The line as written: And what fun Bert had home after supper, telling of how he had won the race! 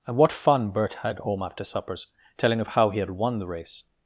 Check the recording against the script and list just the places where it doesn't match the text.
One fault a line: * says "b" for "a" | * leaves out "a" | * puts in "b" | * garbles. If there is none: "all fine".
* says "suppers" for "supper"